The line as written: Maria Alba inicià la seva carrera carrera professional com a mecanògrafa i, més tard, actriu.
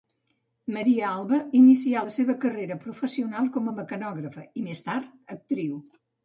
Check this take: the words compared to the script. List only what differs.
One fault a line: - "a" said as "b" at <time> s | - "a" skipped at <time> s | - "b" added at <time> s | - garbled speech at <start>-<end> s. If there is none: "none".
- "carrera" skipped at 2.8 s